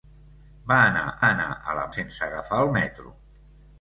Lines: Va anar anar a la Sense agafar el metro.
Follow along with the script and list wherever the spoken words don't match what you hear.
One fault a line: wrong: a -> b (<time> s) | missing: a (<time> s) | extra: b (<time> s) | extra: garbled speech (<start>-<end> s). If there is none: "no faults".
no faults